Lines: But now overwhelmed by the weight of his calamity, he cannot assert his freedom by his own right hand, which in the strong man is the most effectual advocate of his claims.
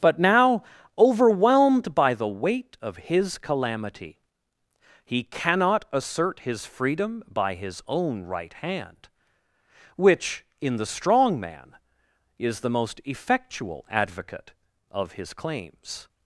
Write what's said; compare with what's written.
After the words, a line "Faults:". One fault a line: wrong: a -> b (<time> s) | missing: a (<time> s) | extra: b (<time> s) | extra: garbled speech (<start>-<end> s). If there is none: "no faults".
But now overwhelmed by the weight of his calamity, he cannot assert his freedom by his own right hand, which in the strong man is the most effectual advocate of his claims.
Faults:
no faults